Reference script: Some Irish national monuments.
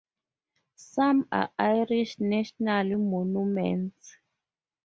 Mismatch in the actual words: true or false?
true